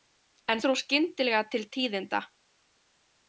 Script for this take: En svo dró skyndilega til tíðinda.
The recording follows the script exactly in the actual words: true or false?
false